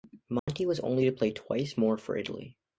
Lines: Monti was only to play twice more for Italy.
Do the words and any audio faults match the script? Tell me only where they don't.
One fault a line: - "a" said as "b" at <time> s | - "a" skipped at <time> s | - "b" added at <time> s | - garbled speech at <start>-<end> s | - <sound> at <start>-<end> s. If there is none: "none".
- dropout at 0.4-0.5 s